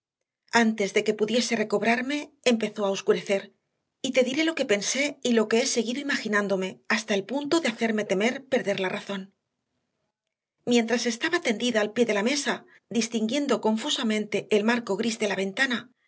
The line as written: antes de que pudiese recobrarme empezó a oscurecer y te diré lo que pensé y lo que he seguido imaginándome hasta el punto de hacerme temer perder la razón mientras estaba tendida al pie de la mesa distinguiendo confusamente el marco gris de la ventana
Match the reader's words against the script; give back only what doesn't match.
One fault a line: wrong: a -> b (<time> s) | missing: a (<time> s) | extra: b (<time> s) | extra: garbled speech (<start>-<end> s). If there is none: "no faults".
no faults